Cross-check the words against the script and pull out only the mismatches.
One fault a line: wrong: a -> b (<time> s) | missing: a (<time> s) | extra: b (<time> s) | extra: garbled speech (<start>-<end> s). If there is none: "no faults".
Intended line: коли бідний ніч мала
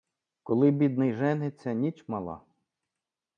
extra: жениться (1.1 s)